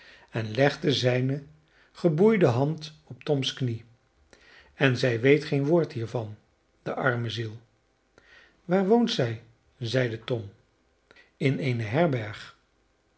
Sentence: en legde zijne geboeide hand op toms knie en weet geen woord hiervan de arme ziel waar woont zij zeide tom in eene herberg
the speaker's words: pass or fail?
fail